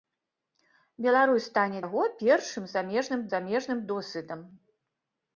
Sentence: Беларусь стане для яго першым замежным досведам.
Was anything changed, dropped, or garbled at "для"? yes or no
yes